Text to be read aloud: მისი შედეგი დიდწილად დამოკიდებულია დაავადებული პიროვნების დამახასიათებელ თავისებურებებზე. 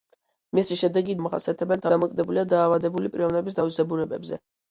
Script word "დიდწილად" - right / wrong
wrong